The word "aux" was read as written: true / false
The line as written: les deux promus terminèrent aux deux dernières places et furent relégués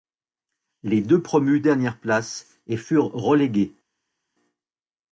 false